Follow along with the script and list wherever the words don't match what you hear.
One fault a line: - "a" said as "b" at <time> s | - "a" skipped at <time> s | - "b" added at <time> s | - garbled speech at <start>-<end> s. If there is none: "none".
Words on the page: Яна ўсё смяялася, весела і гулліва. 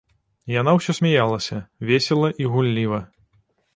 none